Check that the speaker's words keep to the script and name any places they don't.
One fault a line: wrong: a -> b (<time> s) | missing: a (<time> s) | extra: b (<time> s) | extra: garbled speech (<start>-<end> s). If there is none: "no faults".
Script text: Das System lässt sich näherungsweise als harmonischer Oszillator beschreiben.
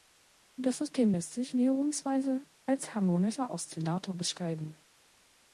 no faults